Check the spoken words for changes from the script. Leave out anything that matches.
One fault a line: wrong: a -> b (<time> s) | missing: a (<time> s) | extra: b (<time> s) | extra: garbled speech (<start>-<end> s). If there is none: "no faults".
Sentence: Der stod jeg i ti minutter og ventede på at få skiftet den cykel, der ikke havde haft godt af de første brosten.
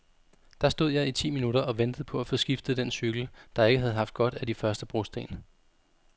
no faults